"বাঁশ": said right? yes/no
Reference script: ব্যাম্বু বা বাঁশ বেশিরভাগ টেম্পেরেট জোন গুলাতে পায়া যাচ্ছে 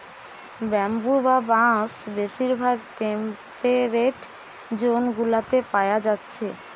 yes